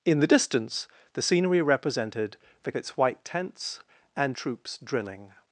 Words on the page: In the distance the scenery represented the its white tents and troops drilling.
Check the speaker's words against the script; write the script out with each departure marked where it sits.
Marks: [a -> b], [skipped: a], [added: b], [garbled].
In the distance the scenery represented the its white tents and troops drilling.